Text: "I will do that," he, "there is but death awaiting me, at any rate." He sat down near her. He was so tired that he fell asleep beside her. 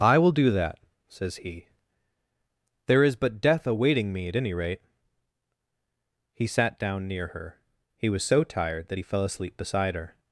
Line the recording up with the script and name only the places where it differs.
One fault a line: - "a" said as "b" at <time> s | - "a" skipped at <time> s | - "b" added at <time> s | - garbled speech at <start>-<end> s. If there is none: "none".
- "says" added at 1.1 s